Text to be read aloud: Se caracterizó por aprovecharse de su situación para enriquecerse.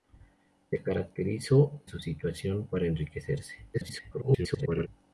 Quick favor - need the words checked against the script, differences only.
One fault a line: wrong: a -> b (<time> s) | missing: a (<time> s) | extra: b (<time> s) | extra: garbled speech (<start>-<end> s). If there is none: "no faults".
missing: por aprovecharse de (1.8 s)
extra: garbled speech (3.7-4.9 s)